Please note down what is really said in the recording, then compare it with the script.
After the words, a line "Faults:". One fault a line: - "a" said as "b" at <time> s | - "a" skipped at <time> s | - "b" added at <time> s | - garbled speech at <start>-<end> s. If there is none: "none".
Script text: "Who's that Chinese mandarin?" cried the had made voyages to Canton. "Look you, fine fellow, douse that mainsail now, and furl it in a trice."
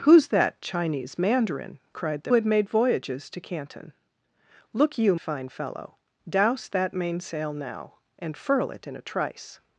"Who's that Chinese mandarin?" cried the had made voyages to Canton. "Look you, fine fellow, douse that mainsail now, and furl it in a trice."
Faults:
none